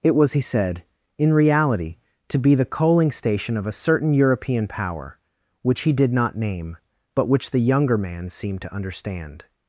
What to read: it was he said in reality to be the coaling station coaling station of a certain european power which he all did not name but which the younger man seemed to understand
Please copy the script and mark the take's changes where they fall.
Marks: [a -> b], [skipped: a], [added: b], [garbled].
it was he said in reality to be the coaling station [skipped: coaling station] of a certain european power which he [skipped: all] did not name but which the younger man seemed to understand